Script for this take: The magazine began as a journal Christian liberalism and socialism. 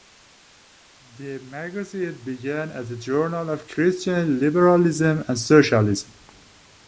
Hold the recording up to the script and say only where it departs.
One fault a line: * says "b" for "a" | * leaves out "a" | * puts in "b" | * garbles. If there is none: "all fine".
* puts in "of"